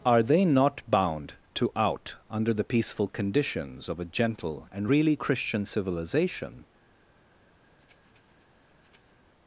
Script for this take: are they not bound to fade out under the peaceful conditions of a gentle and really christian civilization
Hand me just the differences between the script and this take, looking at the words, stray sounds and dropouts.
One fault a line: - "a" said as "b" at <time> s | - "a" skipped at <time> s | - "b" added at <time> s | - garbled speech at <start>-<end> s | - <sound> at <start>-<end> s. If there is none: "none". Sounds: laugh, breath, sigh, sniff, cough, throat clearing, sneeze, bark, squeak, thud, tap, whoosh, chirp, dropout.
- "fade" skipped at 1.7 s
- breath at 7.6-9.2 s